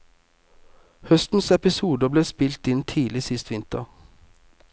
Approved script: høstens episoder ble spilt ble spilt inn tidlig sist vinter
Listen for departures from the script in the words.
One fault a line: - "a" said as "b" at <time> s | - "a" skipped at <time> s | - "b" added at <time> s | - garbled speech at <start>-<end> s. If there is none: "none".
- "ble spilt" skipped at 2.7 s